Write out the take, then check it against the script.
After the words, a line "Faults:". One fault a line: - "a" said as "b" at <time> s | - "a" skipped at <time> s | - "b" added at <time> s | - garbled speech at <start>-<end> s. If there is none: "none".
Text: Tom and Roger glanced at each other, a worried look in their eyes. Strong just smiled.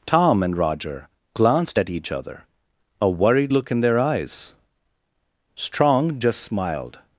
Tom and Roger glanced at each other, a worried look in their eyes. Strong just smiled.
Faults:
none